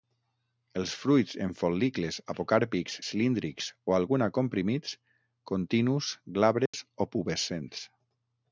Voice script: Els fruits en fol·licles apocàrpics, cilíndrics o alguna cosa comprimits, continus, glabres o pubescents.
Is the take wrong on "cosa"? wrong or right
wrong